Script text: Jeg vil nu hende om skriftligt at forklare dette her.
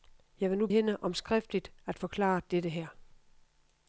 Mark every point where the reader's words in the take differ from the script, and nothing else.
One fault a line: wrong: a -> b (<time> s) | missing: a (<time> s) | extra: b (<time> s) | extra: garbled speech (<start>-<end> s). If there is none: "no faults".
no faults